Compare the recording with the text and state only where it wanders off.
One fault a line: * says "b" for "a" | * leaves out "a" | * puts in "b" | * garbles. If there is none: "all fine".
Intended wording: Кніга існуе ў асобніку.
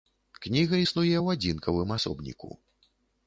* puts in "адзінкавым"